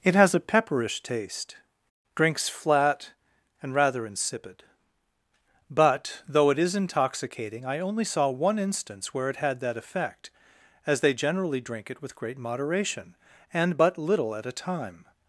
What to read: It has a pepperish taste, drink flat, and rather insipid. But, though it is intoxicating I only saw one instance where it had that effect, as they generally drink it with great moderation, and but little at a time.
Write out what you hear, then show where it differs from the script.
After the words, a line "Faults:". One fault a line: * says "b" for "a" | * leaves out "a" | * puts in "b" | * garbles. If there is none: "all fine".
It has a pepperish taste, drinks flat, and rather insipid. But, though it is intoxicating I only saw one instance where it had that effect, as they generally drink it with great moderation, and but little at a time.
Faults:
* says "drinks" for "drink"